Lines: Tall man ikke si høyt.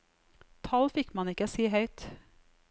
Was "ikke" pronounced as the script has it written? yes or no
yes